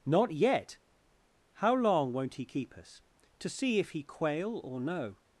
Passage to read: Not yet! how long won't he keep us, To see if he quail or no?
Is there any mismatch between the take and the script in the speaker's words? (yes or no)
no